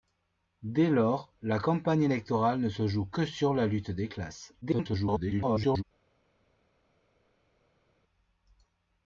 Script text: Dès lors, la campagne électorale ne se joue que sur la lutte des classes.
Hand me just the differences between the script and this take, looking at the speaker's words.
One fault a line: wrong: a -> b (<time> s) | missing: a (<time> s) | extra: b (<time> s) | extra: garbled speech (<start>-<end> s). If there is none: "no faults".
extra: garbled speech (4.6-5.8 s)